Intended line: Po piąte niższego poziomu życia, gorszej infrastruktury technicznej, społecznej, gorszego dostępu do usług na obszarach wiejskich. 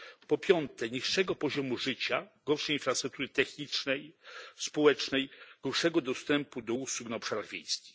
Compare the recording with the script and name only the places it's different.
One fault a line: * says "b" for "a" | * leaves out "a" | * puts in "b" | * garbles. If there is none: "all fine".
all fine